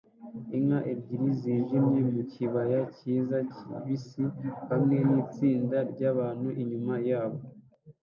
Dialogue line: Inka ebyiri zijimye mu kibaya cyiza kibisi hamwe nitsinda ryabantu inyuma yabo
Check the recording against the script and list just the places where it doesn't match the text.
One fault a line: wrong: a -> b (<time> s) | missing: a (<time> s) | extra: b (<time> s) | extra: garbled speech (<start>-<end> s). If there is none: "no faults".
no faults